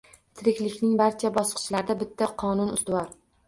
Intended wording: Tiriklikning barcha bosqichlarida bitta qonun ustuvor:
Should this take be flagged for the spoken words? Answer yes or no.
no